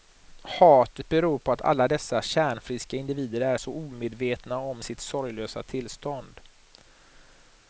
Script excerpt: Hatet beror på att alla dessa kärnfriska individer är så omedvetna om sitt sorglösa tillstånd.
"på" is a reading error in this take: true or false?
false